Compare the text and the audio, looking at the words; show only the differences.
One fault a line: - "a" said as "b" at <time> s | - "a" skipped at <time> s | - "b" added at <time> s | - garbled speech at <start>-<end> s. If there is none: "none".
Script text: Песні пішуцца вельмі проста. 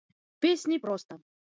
- "пішуцца вельмі" skipped at 0.8 s